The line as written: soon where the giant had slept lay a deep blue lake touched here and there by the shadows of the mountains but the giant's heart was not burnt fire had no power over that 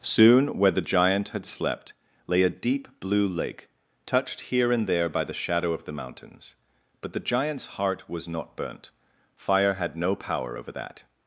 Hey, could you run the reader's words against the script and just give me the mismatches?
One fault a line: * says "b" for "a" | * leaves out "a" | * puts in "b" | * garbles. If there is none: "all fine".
* says "shadow" for "shadows"